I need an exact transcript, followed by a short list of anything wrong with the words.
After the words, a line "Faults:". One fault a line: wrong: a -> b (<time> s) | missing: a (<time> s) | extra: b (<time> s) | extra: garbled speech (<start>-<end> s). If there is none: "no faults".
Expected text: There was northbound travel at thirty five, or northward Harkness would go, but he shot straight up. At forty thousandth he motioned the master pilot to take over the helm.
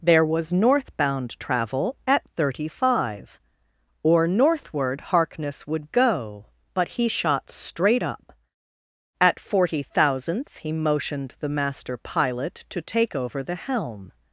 There was northbound travel at thirty five, or northward Harkness would go, but he shot straight up. At forty thousandth he motioned the master pilot to take over the helm.
Faults:
no faults